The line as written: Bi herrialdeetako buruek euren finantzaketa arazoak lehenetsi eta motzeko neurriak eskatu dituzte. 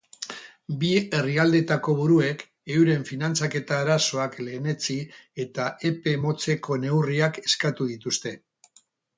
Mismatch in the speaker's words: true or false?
true